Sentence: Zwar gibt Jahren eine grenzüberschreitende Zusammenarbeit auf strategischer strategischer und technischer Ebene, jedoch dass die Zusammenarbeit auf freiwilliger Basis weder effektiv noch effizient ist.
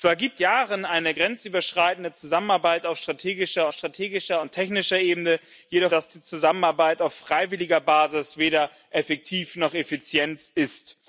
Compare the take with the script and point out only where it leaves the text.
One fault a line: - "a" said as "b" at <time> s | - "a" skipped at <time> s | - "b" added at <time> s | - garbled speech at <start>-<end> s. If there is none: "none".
none